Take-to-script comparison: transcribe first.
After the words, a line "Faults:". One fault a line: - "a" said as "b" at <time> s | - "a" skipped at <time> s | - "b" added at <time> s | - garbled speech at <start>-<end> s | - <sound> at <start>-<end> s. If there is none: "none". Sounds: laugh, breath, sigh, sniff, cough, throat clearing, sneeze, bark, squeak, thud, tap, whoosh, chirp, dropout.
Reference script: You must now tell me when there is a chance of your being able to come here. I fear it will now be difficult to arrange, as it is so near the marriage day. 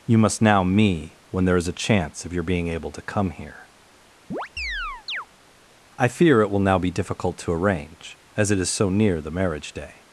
You must now me when there is a chance of your being able to come here. I fear it will now be difficult to arrange, as it is so near the marriage day.
Faults:
- "tell" skipped at 0.6 s
- chirp at 4.3-5.3 s